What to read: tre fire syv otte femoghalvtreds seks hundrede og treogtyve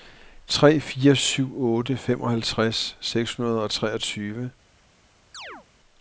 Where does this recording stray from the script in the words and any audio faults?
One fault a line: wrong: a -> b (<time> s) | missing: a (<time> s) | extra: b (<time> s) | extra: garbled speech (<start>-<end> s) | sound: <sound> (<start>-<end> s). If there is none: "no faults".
sound: chirp (5.3-5.7 s)